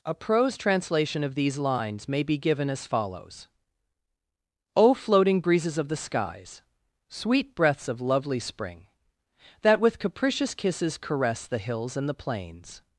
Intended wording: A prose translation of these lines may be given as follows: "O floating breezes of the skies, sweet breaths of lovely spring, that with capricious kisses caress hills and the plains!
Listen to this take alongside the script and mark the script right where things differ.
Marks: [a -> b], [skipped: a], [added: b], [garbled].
A prose translation of these lines may be given as follows: "O floating breezes of the skies, sweet breaths of lovely spring, that with capricious kisses caress [added: the] hills and the plains!